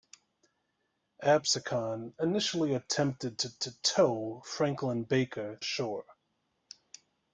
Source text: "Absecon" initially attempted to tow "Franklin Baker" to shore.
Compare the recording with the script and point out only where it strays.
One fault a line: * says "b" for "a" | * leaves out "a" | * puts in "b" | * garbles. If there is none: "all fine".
* puts in "to"
* leaves out "to"